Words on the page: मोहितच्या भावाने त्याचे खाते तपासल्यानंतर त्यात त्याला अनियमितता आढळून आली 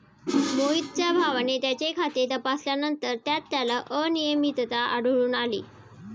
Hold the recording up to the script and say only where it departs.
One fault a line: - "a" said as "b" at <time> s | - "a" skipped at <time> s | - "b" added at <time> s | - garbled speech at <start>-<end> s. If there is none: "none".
none